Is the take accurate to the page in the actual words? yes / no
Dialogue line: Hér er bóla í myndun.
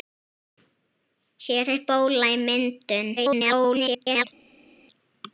no